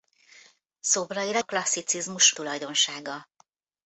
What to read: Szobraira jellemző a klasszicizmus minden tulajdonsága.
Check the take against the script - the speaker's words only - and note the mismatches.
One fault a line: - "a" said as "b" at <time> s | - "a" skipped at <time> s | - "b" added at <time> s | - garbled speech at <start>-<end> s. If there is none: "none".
- "jellemző" skipped at 1.4 s
- "minden" skipped at 2.3 s